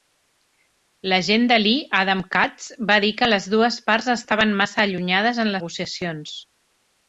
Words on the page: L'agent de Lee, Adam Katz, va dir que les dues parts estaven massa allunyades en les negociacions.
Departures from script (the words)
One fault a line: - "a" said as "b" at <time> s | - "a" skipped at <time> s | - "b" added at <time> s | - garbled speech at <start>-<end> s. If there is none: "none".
- "les" skipped at 5.6 s